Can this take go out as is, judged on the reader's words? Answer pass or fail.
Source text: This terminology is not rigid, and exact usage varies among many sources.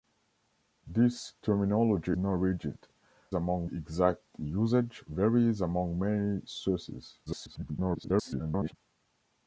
fail